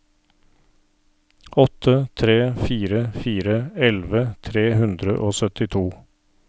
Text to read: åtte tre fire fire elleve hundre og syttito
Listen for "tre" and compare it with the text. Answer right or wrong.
right